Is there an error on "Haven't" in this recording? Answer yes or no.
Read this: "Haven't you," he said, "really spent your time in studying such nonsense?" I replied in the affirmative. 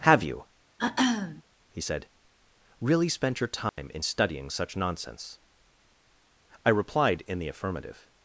yes